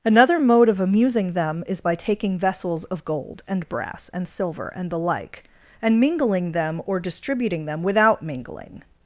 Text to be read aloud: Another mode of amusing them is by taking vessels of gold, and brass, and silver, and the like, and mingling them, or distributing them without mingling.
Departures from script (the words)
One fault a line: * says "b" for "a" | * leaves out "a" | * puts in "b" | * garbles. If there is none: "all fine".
all fine